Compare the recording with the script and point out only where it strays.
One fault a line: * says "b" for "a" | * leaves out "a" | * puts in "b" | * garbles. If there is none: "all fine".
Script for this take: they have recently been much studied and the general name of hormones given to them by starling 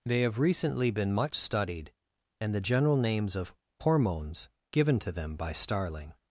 * says "names" for "name"